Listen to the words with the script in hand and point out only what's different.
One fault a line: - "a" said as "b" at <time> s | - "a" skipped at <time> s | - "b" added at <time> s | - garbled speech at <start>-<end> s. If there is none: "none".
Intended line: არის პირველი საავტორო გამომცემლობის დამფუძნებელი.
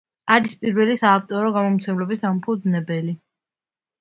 none